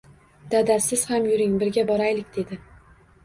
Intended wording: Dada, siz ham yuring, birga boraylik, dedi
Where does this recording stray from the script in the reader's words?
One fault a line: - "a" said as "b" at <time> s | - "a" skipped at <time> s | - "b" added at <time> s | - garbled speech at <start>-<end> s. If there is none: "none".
none